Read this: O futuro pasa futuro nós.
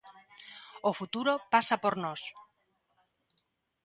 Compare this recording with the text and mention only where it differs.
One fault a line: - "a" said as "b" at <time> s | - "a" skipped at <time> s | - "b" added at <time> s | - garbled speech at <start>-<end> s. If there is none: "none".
- "futuro" said as "por" at 1.8 s